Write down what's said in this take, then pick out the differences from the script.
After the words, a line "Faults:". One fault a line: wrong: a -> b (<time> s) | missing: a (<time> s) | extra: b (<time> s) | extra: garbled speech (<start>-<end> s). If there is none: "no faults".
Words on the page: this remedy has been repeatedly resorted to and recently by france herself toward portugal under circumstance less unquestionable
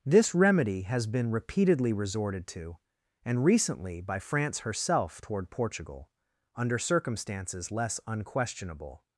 this remedy has been repeatedly resorted to and recently by france herself toward portugal under circumstances less unquestionable
Faults:
wrong: circumstance -> circumstances (6.8 s)